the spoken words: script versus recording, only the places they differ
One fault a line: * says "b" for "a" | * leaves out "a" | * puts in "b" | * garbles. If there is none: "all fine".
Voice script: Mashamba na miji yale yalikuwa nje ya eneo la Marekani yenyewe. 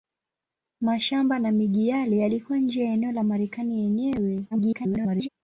* garbles